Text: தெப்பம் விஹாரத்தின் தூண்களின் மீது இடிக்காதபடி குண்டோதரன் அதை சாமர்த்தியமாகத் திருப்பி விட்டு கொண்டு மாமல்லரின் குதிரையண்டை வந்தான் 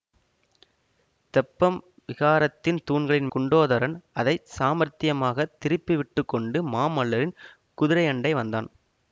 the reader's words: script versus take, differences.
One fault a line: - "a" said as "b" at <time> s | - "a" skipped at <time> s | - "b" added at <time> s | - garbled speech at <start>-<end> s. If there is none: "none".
- "மீது இடிக்காதபடி" skipped at 3.3 s